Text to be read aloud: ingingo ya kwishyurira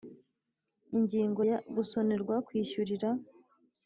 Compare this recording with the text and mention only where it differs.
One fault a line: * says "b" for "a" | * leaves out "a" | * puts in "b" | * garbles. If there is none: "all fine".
* puts in "gusonerwa"